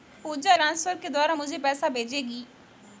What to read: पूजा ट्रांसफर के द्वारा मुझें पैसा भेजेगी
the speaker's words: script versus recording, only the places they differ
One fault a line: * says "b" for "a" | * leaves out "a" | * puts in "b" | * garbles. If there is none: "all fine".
all fine